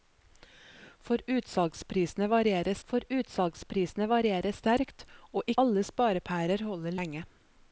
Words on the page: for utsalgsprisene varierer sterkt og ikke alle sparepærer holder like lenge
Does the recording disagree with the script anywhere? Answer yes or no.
yes